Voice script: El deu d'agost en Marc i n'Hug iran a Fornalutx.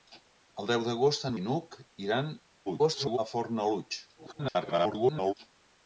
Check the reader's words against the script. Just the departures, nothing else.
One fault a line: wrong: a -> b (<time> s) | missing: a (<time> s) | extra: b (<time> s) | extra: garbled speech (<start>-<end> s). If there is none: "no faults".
missing: Marc (1.3 s)
extra: garbled speech (2.7-3.2 s)
extra: garbled speech (4.2-5.3 s)